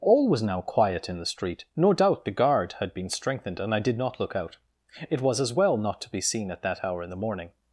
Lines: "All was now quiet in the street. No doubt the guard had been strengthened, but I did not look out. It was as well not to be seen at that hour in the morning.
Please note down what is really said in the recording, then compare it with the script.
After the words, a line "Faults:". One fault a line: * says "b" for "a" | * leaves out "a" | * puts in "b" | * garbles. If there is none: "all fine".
"All was now quiet in the street. No doubt the guard had been strengthened, and I did not look out. It was as well not to be seen at that hour in the morning.
Faults:
* says "and" for "but"